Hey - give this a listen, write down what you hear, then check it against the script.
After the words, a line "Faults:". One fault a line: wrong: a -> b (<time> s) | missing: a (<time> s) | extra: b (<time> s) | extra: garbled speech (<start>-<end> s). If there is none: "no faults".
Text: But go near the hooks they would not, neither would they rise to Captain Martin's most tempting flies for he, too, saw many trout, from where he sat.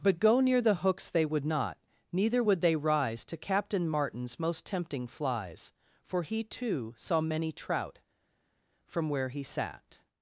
But go near the hooks they would not, neither would they rise to Captain Martin's most tempting flies for he, too, saw many trout, from where he sat.
Faults:
no faults